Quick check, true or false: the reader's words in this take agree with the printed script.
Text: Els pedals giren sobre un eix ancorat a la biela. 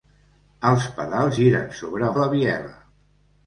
false